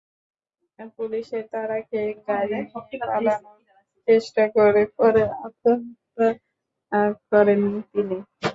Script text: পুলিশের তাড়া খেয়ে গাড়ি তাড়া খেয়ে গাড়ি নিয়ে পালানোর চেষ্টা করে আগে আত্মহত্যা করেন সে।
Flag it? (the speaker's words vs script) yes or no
yes